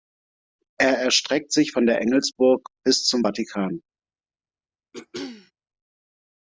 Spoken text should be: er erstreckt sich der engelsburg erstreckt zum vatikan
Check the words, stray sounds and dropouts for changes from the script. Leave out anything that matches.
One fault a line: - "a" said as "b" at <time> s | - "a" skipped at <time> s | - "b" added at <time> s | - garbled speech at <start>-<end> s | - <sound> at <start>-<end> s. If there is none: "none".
- "von" added at 1.7 s
- "erstreckt" said as "bis" at 2.9 s
- throat clearing at 4.9-5.5 s